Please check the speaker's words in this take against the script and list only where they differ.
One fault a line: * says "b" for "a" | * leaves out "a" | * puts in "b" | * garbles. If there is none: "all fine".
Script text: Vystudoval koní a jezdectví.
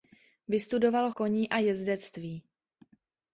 all fine